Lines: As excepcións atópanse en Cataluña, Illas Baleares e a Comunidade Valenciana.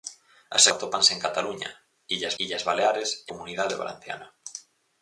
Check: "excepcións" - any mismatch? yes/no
yes